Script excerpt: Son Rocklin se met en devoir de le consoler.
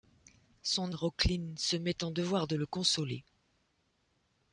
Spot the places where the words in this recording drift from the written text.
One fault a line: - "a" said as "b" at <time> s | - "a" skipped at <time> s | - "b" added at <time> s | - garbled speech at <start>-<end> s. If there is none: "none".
none